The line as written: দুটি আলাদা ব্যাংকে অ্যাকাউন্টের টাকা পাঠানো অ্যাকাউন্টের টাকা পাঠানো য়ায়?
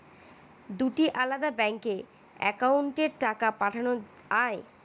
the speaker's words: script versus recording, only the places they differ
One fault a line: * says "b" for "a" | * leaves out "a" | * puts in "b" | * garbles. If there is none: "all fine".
* leaves out "অ্যাকাউন্টের টাকা পাঠানো"